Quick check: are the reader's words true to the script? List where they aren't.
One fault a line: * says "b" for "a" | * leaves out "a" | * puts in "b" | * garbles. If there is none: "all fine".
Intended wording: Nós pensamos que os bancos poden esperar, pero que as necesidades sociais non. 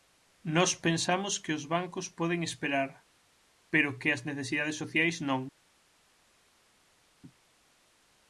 all fine